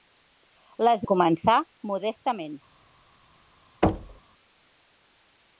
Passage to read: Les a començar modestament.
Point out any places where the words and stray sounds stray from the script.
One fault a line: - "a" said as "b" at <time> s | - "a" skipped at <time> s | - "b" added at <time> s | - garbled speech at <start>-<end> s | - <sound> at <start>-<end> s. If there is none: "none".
- thud at 3.8-4.2 s